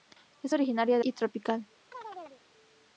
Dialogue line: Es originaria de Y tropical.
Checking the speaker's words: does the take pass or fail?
pass